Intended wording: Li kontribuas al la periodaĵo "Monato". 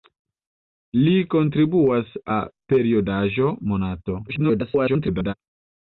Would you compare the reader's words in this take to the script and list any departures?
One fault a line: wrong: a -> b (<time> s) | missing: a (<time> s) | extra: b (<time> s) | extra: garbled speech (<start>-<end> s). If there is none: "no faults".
missing: al (2.2 s)
extra: garbled speech (4.3-5.3 s)